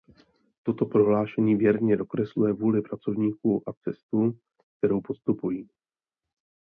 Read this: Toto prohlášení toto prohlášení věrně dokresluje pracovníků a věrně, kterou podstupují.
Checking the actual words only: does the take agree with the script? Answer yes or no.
no